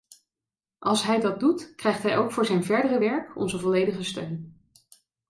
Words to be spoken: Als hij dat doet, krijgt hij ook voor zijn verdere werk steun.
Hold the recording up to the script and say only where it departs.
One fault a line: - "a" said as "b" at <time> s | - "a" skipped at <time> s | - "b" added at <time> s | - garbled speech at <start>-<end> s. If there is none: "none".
- "onze volledige" added at 3.4 s